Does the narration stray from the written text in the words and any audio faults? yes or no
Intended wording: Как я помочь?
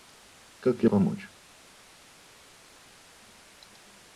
no